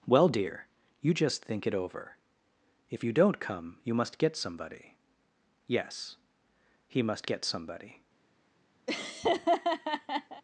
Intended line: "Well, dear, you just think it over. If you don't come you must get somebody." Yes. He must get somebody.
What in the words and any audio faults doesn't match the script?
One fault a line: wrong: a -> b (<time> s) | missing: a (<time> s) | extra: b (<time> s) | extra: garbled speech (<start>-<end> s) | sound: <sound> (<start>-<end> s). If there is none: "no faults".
sound: laugh (8.9-10.4 s)